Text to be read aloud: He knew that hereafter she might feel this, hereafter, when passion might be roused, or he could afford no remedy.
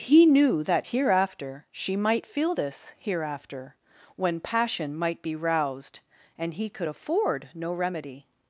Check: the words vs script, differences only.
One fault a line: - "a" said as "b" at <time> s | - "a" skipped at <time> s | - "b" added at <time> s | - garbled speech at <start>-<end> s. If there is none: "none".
- "or" said as "and" at 6.4 s